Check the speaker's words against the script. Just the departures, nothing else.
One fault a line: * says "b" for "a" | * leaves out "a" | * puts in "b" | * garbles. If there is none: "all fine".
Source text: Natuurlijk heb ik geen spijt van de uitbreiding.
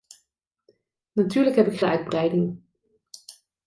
* leaves out "geen spijt van"